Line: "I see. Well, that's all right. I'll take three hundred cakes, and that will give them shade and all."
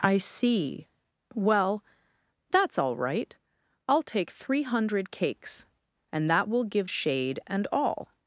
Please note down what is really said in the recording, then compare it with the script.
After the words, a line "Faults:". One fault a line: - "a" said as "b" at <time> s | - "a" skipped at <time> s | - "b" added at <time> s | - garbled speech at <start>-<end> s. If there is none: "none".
"I see. Well, that's all right. I'll take three hundred cakes, and that will give shade and all."
Faults:
- "them" skipped at 6.9 s